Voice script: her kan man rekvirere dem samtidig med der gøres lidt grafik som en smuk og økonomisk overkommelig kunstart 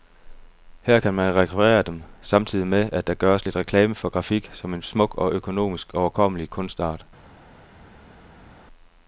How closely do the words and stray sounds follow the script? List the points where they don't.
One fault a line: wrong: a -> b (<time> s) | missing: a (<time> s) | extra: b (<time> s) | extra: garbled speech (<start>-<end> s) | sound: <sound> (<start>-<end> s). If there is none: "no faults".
extra: at (2.9 s)
extra: reklame for (3.6 s)